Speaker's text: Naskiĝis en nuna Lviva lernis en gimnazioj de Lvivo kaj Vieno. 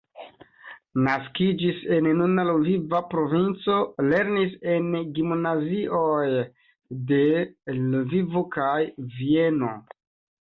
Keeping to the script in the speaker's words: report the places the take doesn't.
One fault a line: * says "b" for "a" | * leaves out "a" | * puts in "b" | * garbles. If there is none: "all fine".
* puts in "provinco"